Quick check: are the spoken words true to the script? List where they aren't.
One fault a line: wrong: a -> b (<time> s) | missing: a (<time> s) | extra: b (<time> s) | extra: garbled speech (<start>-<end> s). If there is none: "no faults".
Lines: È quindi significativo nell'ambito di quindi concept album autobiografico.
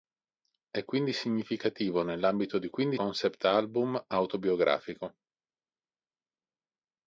no faults